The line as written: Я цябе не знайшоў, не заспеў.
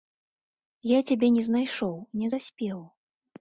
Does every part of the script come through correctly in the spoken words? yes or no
yes